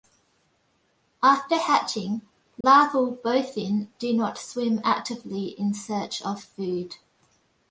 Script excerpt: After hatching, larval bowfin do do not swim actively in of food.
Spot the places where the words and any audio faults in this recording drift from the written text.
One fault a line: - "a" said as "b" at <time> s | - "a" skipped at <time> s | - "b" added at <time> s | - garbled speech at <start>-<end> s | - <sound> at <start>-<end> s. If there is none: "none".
- dropout at 2.6-2.6 s
- "do" skipped at 4.1 s
- "search" added at 5.8 s